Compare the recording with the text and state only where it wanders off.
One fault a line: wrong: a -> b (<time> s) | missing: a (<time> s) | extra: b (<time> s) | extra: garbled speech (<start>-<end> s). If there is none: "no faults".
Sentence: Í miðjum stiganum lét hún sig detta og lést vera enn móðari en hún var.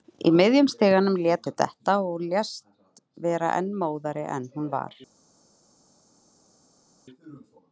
missing: hún (1.5 s)